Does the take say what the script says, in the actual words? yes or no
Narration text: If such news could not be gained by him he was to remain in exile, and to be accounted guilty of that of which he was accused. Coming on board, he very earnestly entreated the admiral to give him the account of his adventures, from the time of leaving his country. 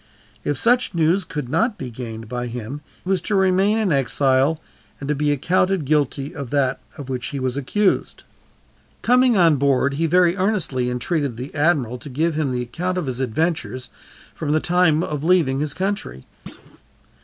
no